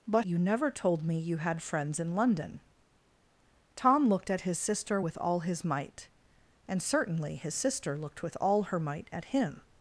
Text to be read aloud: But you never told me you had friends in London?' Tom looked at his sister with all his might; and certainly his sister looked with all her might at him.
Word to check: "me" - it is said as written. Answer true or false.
true